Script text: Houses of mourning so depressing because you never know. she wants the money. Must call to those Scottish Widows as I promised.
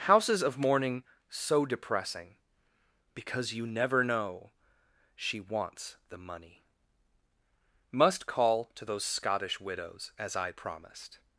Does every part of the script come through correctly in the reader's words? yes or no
yes